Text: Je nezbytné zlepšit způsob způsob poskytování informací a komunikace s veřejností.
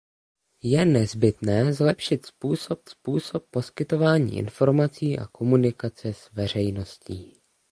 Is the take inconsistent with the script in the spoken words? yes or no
no